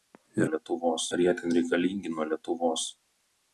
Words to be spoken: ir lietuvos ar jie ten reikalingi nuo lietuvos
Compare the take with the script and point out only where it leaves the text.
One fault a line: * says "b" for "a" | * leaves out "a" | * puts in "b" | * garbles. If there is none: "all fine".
all fine